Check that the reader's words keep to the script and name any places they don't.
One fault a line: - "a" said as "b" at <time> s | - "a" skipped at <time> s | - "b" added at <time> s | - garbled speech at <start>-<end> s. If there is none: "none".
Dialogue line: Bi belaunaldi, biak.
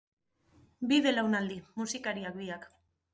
- "musikariak" added at 1.8 s